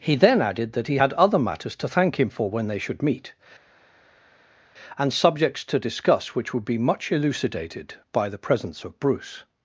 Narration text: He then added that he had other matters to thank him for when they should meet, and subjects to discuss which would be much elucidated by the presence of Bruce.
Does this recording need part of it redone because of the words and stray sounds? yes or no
no